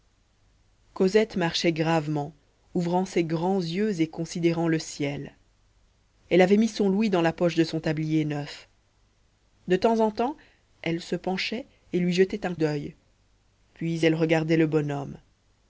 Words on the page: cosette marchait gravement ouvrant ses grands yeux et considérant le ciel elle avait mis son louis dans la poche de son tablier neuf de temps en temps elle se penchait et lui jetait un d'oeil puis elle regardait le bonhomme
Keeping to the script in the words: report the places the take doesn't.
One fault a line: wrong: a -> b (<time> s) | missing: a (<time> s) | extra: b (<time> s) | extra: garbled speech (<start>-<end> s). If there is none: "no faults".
no faults